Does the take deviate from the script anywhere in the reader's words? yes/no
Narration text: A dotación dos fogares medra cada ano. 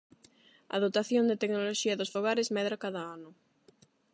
yes